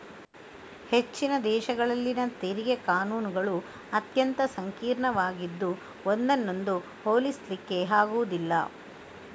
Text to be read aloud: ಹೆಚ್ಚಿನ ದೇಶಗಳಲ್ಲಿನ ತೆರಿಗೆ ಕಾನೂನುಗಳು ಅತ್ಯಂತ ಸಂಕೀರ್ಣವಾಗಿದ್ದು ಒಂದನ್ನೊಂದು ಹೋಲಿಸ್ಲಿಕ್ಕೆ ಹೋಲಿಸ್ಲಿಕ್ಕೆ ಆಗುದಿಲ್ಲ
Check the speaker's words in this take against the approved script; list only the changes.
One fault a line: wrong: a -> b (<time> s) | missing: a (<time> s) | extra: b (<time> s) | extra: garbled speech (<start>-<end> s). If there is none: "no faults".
missing: ಹೋಲಿಸ್ಲಿಕ್ಕೆ (7.8 s)